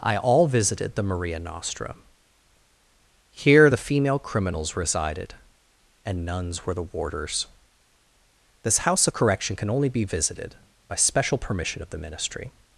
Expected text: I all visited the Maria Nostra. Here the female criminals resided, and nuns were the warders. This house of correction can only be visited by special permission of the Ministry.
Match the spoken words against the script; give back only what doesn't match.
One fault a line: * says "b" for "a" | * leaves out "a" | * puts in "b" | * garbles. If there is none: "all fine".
all fine